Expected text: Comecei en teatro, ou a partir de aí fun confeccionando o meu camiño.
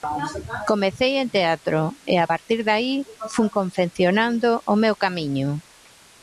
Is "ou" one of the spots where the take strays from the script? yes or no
yes